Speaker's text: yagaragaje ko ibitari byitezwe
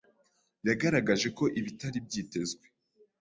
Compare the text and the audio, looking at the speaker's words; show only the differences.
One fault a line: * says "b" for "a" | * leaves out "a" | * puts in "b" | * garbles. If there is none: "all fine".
all fine